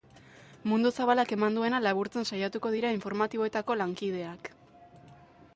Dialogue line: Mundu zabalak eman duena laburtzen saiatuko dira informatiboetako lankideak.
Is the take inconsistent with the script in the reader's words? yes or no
no